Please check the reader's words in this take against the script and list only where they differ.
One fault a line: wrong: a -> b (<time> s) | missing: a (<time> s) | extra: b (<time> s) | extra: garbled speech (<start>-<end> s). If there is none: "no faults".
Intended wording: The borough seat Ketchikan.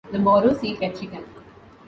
no faults